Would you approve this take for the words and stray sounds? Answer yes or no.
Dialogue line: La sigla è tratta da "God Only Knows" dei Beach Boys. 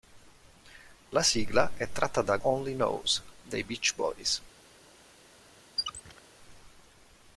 no